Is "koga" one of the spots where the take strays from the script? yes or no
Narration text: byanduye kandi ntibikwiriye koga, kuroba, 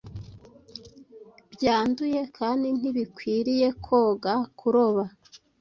no